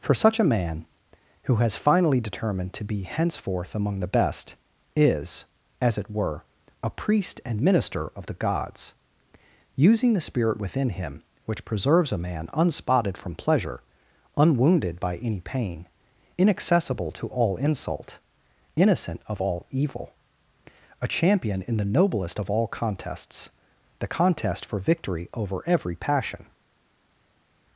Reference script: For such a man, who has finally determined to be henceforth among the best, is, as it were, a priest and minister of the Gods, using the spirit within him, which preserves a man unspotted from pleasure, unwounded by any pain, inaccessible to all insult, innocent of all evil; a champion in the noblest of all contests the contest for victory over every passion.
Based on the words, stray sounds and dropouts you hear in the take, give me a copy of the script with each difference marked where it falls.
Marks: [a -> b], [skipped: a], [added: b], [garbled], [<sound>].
For such a man, who has finally determined to be henceforth among the best, is, as it were, a priest and minister of the Gods, using the spirit within him, which preserves a man unspotted from pleasure, unwounded by any pain, inaccessible to all insult, innocent of all evil; a champion in the noblest of all contests the contest for victory over every passion.